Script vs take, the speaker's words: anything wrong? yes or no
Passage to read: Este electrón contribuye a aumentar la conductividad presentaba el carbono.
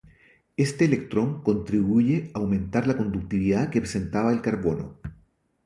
yes